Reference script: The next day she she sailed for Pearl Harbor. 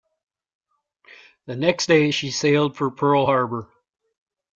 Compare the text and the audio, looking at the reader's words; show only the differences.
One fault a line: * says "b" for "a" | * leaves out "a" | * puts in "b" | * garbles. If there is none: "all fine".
* leaves out "she"